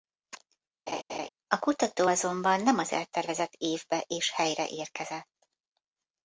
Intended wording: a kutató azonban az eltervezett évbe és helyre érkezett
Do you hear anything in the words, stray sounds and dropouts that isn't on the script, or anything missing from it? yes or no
yes